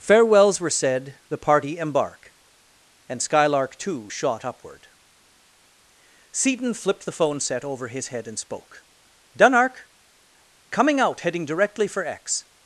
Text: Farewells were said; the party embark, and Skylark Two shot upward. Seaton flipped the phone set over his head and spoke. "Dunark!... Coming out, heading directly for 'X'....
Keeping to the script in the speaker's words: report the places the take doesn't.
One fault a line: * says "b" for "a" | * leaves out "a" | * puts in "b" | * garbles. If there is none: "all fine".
all fine